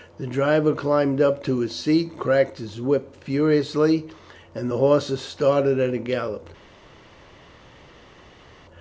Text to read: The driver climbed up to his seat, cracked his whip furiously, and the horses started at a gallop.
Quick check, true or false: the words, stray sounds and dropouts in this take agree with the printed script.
true